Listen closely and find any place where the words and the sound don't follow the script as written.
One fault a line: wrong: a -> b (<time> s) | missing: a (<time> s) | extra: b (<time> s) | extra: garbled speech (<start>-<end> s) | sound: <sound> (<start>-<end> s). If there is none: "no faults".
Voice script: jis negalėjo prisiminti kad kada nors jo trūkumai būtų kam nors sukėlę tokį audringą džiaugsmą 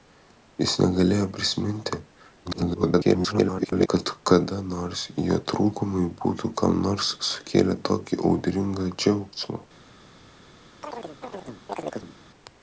extra: garbled speech (2.4-3.9 s)
sound: chirp (10.8-12.2 s)